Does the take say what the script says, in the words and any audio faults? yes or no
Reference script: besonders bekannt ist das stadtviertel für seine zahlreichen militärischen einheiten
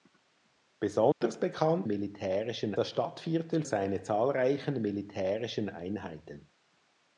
no